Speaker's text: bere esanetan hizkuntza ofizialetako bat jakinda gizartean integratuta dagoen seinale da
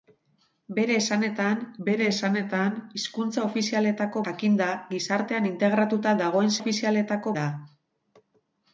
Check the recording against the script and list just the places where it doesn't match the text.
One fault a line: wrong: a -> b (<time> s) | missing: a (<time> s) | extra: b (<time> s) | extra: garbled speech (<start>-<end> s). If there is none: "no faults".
extra: bere esanetan (1.9 s)
missing: bat (4.2 s)
wrong: seinale -> ofizialetako (6.6 s)